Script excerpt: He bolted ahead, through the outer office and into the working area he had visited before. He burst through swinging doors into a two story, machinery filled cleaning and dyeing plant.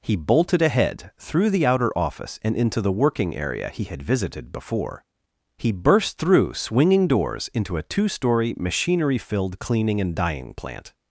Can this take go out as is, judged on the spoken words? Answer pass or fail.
pass